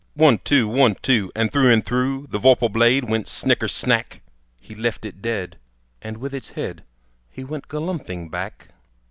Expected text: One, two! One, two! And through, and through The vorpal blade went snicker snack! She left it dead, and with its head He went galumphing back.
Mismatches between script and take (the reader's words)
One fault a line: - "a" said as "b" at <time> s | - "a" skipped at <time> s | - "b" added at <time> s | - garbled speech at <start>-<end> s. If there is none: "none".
- "She" said as "He" at 4.6 s